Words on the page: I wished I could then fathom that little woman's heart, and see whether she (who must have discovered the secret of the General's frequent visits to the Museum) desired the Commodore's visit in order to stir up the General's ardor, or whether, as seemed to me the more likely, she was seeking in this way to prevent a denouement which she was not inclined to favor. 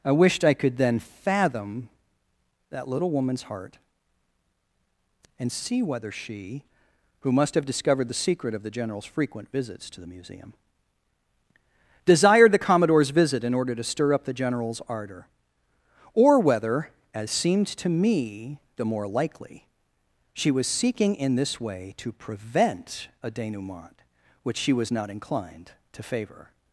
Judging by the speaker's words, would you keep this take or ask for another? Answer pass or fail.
pass